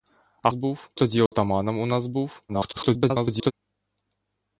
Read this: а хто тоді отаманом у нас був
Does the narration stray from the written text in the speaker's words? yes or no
yes